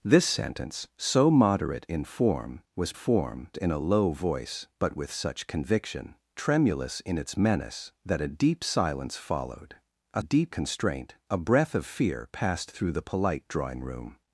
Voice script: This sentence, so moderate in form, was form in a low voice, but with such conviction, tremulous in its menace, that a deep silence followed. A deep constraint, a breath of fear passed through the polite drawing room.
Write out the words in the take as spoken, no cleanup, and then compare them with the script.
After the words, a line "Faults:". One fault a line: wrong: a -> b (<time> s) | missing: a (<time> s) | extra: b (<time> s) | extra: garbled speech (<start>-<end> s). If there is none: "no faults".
This sentence, so moderate in form, was form in a low voice, but with such conviction, tremulous in its menace, that a deep silence followed. A deep constraint, a breath of fear passed through the polite drawing room.
Faults:
no faults